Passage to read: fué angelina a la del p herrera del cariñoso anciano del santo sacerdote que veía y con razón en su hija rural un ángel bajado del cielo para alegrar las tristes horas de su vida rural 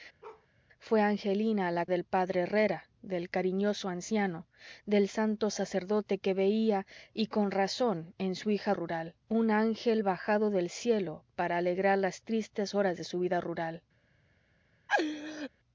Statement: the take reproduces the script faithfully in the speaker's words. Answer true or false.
true